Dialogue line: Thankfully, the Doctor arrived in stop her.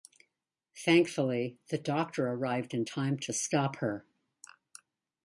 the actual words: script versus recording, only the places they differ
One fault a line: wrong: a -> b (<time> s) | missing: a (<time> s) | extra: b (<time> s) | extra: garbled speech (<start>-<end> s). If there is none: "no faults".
extra: time to (2.8 s)